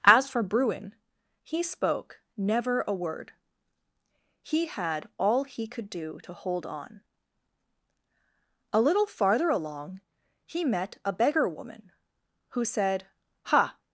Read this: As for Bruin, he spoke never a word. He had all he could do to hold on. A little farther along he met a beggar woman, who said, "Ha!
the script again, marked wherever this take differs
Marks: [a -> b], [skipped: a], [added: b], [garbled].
As for Bruin, he spoke never a word. He had all he could do to hold on. A little farther along he met a beggar woman, who said, "Ha!